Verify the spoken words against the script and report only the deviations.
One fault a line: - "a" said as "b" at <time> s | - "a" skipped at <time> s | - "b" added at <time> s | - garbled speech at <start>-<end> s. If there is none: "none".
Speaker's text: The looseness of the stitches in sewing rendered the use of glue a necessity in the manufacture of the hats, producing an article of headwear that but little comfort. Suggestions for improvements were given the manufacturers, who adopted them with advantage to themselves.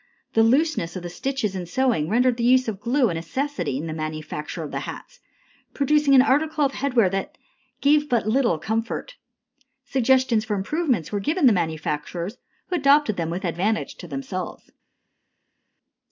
- "gave" added at 7.8 s